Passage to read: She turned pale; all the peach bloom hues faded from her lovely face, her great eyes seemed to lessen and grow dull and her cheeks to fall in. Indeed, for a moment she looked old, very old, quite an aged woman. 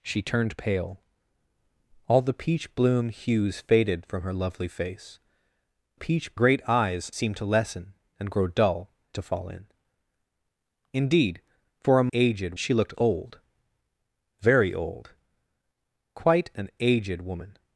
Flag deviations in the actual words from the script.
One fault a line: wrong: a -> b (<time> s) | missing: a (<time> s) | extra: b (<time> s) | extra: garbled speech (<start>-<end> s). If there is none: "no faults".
wrong: her -> peach (5.9 s)
missing: and her cheeks (8.9 s)
wrong: moment -> aged (12.1 s)